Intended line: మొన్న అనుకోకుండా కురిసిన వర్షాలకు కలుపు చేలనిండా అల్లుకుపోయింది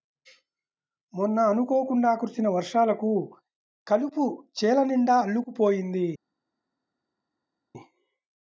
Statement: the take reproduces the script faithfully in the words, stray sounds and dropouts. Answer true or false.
true